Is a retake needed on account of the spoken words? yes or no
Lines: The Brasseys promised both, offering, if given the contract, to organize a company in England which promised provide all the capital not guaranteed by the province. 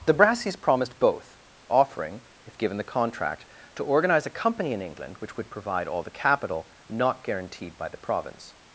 yes